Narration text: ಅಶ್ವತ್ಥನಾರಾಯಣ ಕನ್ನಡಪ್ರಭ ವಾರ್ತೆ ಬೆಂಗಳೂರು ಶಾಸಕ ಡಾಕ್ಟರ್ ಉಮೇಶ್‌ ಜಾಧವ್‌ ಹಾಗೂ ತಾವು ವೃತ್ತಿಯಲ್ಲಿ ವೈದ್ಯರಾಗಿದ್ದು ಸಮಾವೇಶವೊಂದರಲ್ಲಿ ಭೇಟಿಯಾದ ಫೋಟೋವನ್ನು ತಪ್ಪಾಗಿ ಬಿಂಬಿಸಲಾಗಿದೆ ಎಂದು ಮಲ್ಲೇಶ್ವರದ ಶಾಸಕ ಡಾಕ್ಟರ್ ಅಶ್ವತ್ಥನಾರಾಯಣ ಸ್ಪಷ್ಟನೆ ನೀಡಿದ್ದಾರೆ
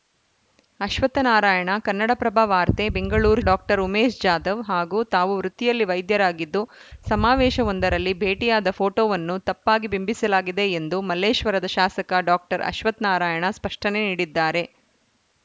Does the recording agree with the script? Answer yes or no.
no